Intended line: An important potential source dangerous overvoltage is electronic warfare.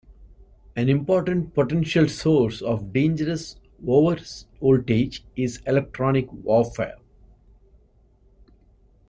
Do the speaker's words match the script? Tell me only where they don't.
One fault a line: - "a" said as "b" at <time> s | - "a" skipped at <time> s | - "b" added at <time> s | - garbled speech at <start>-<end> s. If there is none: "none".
- "of" added at 2.6 s